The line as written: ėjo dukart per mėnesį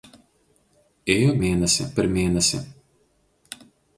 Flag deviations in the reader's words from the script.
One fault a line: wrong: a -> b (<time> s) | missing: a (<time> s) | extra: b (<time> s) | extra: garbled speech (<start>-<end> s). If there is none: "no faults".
wrong: dukart -> mėnesį (1.4 s)